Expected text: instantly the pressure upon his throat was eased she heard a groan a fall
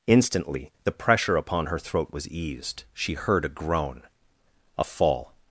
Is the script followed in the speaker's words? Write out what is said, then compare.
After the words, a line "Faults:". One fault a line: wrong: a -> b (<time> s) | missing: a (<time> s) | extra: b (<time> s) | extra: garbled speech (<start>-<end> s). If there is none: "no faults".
instantly the pressure upon her throat was eased she heard a groan a fall
Faults:
wrong: his -> her (1.7 s)